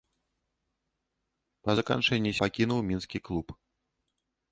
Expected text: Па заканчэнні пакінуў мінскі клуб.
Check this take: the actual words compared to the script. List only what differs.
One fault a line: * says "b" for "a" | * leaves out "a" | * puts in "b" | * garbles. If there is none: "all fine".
all fine